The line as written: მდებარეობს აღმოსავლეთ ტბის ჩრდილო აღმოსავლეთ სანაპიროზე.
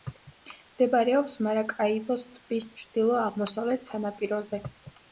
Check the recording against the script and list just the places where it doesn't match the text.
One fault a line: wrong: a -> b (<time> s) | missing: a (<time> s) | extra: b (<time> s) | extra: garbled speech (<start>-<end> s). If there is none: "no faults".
wrong: აღმოსავლეთ -> მარაკაიბოს (1.5 s)